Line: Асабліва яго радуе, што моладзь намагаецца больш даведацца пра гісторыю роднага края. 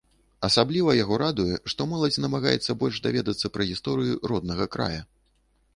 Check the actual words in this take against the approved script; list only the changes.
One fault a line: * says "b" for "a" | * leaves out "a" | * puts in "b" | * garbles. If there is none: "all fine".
all fine